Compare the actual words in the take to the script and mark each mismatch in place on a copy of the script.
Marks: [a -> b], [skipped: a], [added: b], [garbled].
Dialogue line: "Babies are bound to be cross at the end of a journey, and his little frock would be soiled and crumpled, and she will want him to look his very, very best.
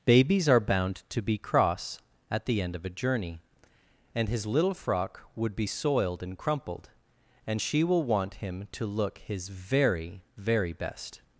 "Babies are bound to be cross at the end of a journey, and his little frock would be soiled and crumpled, and she will want him to look his very, very best.